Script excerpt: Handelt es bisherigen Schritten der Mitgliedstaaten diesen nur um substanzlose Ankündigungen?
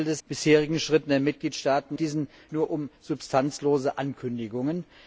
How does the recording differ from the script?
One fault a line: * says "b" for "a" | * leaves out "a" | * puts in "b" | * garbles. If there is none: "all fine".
all fine